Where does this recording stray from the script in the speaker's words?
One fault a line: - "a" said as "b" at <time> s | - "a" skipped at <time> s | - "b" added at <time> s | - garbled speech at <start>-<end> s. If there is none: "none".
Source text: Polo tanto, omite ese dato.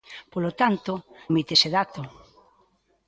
none